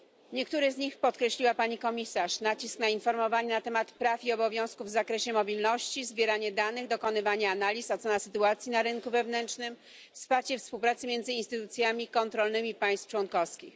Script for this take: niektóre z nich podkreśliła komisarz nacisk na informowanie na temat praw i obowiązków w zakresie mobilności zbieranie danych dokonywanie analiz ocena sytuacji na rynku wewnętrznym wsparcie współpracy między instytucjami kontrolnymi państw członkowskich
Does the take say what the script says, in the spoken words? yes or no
no